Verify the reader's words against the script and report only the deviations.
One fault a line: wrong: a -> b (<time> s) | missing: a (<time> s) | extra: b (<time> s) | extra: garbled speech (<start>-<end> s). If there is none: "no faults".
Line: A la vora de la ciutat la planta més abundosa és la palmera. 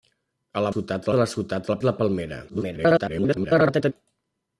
wrong: vora -> ciutat (0.7 s)
missing: planta més abundosa (1.8 s)
extra: garbled speech (2.5-3.9 s)